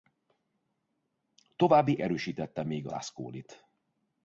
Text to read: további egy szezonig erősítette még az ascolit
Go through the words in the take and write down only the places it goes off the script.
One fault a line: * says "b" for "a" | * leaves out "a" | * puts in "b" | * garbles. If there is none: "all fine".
* leaves out "egy szezonig"
* leaves out "az"